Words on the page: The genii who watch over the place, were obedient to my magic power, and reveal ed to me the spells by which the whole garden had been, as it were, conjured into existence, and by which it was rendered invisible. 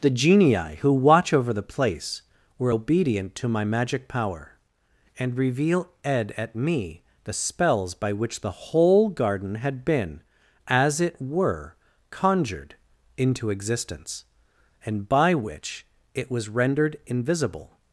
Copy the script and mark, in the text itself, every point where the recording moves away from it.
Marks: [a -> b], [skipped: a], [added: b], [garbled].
The genii who watch over the place, were obedient to my magic power, and reveal ed [to -> at] me the spells by which the whole garden had been, as it were, conjured into existence, and by which it was rendered invisible.